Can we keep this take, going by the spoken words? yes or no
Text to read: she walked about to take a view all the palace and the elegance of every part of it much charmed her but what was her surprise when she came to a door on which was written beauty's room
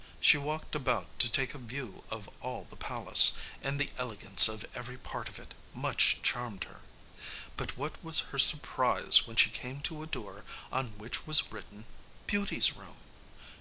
no